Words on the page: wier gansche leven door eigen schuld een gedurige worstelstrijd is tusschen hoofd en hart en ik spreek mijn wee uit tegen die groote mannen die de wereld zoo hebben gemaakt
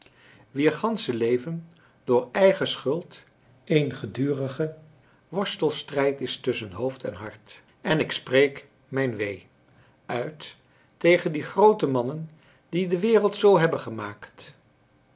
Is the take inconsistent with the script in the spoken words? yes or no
no